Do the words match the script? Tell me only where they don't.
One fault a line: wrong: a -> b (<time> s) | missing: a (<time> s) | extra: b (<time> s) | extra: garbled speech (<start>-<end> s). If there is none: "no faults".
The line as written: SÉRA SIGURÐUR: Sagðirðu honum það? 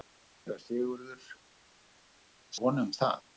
missing: Sagðirðu (1.3 s)